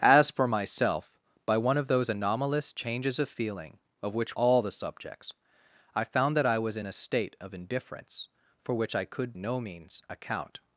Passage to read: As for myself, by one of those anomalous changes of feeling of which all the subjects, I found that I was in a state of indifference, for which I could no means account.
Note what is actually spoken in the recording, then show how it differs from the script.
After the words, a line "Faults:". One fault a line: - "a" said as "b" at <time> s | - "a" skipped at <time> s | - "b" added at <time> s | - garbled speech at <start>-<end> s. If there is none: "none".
As for myself, by one of those anomalous changes of feeling of which all the subjects, I found that I was in a state of indifference, for which I could no means account.
Faults:
none